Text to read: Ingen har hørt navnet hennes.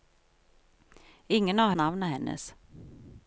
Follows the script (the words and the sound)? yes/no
no